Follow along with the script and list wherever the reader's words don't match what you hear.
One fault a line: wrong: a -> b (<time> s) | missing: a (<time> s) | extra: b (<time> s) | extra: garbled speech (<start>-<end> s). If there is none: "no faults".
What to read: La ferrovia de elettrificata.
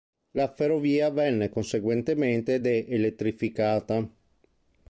extra: venne conseguentemente (1.1 s)